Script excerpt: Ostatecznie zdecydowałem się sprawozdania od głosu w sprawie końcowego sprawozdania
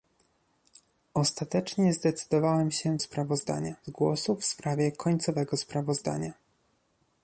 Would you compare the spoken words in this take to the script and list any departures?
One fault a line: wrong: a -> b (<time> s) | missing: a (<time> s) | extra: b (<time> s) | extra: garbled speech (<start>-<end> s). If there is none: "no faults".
no faults